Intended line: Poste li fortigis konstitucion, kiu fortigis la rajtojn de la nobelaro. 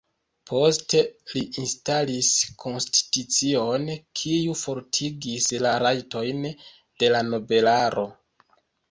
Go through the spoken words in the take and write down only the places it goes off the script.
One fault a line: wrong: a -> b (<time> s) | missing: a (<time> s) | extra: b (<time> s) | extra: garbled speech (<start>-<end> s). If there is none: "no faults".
wrong: fortigis -> instalis (1.6 s)